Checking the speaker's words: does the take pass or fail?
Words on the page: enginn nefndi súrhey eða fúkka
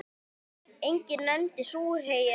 pass